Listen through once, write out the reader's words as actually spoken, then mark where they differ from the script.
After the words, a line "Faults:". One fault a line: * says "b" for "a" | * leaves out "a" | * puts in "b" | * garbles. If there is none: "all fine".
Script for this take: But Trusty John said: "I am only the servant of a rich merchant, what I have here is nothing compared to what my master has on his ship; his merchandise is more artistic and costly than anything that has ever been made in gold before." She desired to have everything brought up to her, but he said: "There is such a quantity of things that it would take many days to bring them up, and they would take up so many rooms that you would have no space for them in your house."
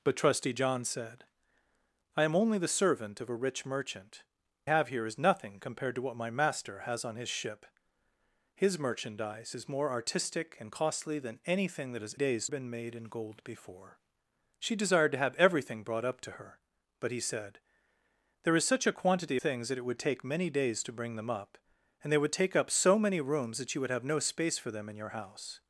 But Trusty John said: "I am only the servant of a rich merchant, have here is nothing compared to what my master has on his ship; his merchandise is more artistic and costly than anything that has days been made in gold before." She desired to have everything brought up to her, but he said: "There is such a quantity things that it would take many days to bring them up, and they would take up so many rooms that you would have no space for them in your house."
Faults:
* leaves out "what I"
* says "days" for "ever"
* leaves out "of"